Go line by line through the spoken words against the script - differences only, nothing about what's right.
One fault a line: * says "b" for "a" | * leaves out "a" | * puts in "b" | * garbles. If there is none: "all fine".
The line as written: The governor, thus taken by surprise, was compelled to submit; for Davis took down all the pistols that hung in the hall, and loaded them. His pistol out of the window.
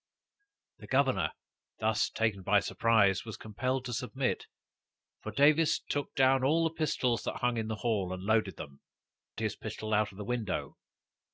all fine